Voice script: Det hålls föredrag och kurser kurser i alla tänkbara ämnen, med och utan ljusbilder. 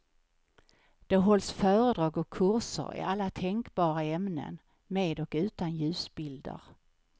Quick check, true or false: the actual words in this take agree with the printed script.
false